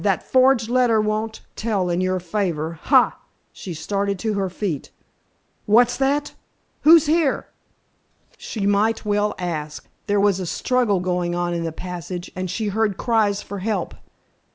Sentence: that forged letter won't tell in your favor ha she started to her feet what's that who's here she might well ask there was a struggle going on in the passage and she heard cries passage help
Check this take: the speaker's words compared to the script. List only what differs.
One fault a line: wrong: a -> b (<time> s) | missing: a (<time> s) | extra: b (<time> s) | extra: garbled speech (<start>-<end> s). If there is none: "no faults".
wrong: passage -> for (13.4 s)